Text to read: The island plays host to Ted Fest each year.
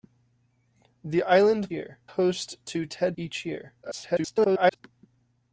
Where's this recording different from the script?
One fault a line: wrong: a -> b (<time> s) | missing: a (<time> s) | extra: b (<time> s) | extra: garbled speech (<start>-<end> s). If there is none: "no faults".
wrong: plays -> year (1.7 s)
missing: Fest (3.2 s)
extra: garbled speech (3.8-4.8 s)